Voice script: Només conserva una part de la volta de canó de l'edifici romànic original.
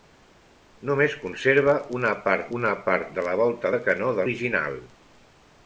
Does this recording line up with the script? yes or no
no